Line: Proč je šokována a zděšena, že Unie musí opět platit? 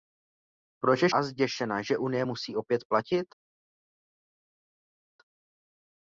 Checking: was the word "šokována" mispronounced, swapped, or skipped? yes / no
yes